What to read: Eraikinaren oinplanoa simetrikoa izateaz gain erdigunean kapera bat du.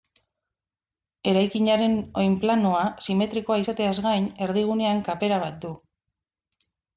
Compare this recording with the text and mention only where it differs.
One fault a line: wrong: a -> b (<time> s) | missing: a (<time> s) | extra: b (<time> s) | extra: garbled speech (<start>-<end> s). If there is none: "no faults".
no faults